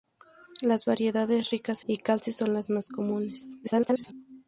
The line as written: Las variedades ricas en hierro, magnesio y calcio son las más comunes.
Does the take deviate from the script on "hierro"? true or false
true